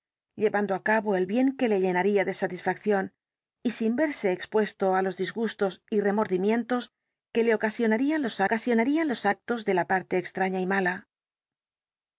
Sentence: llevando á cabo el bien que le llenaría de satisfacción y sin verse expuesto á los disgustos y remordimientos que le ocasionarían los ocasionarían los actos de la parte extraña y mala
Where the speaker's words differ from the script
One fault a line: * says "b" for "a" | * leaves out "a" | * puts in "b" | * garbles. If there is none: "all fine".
all fine